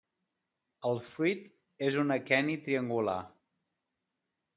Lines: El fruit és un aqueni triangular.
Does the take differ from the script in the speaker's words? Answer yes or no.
no